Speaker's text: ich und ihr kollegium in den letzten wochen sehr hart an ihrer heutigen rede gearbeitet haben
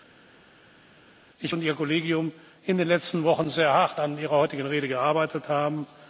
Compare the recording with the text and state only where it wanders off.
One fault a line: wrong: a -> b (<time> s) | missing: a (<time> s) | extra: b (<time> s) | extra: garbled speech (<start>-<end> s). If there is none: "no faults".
no faults